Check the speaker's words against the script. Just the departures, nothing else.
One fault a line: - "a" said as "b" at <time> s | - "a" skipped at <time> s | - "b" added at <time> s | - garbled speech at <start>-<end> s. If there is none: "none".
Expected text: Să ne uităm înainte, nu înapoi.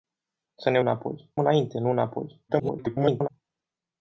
- "uităm" said as "înapoi" at 0.8 s
- garbled speech at 2.5-3.3 s